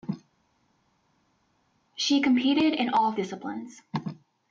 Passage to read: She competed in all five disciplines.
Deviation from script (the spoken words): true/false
true